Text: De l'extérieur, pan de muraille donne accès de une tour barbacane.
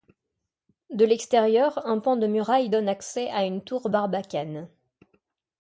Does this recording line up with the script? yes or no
no